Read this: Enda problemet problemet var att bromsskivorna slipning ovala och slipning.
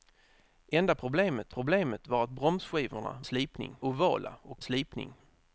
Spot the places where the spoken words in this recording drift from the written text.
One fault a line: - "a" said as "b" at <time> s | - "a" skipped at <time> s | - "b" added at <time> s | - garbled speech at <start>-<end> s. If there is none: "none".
none